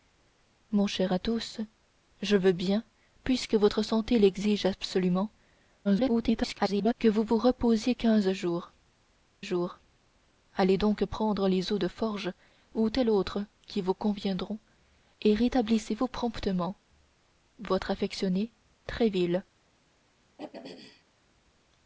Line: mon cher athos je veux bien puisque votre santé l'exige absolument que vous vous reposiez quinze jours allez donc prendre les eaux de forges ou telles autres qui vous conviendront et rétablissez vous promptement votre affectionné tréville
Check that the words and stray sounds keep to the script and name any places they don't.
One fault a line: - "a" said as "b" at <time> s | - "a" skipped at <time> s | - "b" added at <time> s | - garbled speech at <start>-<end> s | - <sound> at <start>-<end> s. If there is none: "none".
- garbled speech at 5.8-6.9 s
- "jours" added at 9.4 s
- throat clearing at 20.4-21.0 s